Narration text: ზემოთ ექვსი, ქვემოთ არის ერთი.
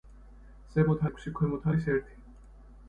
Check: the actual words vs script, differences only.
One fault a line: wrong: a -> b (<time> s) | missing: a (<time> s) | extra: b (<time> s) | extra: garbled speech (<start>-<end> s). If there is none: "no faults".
no faults